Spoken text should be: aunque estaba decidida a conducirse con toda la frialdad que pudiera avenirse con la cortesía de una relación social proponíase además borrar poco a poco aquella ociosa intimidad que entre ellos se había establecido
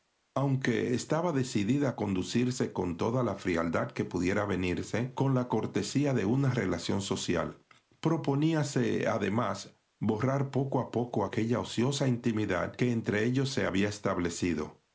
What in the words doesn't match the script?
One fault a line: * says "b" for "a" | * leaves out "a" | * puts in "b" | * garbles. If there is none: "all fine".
all fine